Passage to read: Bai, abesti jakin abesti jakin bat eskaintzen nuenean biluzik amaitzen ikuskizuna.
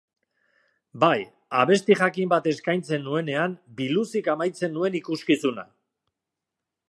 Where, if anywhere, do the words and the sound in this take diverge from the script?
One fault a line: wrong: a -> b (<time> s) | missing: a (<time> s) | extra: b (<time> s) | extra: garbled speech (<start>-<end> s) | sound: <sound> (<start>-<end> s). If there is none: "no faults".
missing: abesti jakin (2.3 s)
extra: nuen (4.8 s)